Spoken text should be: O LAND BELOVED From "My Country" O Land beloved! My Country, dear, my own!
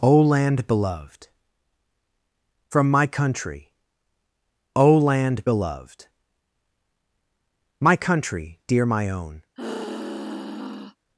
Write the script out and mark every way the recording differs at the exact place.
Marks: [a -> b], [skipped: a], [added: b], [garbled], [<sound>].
O LAND BELOVED From "My Country" O Land beloved! My Country, dear, my own! [sigh]